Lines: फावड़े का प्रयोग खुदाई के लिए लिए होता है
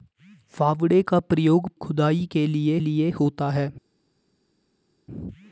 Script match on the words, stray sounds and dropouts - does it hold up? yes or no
yes